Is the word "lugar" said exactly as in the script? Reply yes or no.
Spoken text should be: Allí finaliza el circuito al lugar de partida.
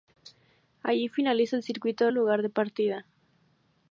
yes